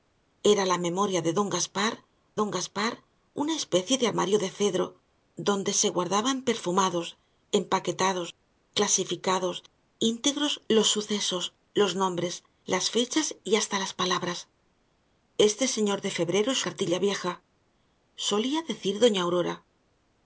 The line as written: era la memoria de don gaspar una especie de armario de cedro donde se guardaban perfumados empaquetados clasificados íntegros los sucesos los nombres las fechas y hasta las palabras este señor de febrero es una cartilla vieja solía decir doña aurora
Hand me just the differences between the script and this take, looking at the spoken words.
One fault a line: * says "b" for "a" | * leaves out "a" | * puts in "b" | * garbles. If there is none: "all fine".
* puts in "don gaspar"
* leaves out "una"